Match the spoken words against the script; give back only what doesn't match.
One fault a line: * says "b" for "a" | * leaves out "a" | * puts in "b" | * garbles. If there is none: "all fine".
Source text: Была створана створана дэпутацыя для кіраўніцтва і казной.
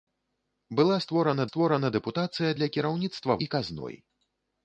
all fine